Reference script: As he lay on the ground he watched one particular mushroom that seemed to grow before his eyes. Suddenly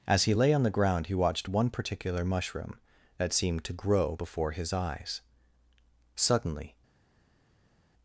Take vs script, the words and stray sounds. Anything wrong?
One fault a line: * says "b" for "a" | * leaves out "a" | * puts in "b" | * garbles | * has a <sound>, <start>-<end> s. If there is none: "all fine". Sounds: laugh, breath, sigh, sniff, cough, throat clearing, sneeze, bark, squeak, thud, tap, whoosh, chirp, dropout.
all fine